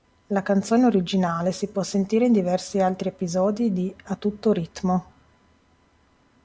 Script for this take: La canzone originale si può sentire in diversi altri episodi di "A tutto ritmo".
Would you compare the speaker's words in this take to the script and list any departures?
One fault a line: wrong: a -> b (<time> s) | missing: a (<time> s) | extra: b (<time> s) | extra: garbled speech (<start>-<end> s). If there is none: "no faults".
no faults